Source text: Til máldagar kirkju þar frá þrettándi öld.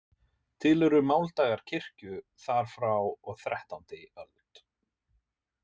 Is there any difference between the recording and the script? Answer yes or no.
yes